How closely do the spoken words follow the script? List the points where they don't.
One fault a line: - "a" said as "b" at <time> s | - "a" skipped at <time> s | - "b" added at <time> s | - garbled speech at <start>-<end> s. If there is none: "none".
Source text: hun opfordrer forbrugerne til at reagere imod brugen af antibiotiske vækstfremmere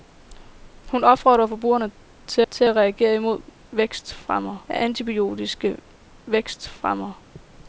- "til" added at 2.5 s
- "brugen" said as "vækstfremmere" at 3.7 s